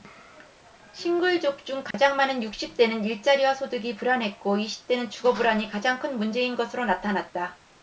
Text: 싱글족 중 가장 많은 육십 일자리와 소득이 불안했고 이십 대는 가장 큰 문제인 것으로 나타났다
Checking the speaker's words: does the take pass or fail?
fail